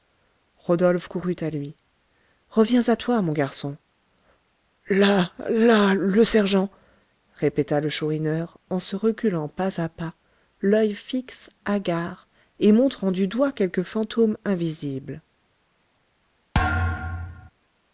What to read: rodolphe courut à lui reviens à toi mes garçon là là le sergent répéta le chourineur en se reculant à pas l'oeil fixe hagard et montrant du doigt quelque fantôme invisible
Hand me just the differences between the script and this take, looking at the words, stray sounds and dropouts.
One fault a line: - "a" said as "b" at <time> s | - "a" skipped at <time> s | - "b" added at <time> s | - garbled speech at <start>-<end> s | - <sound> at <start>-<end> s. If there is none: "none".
- "mes" said as "mon" at 3.2 s
- "pas" added at 9.5 s
- thud at 16.5-17.5 s